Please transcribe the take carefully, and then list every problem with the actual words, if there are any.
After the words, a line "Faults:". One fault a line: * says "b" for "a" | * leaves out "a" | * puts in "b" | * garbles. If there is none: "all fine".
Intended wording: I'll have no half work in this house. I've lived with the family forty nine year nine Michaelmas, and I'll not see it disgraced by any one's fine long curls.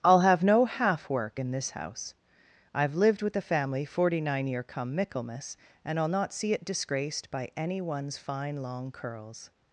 I'll have no half work in this house. I've lived with the family forty nine year come Michaelmas, and I'll not see it disgraced by any one's fine long curls.
Faults:
* says "come" for "nine"